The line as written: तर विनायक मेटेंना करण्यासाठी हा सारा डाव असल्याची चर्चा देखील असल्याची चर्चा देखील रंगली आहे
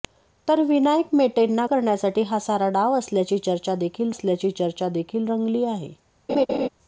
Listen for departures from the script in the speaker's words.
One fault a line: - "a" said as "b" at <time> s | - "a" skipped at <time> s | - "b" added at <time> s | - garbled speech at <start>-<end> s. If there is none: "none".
none